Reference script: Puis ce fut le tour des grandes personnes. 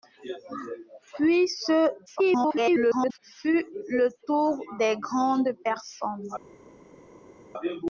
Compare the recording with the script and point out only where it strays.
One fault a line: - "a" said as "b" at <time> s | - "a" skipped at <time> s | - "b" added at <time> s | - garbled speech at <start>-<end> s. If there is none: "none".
- garbled speech at 2.1-3.2 s